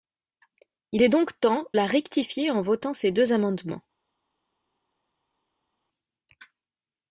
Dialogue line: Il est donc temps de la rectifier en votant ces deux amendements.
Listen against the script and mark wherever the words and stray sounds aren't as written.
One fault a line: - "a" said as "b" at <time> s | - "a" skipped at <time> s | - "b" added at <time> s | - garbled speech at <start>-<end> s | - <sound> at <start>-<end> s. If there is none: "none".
- "de" skipped at 1.7 s